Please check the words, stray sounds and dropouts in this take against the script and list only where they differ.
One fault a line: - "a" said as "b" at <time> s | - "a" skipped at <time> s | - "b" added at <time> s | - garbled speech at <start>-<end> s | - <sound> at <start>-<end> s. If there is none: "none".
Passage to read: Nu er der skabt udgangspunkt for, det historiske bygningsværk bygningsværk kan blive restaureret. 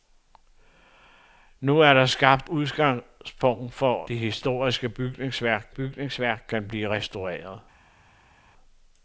none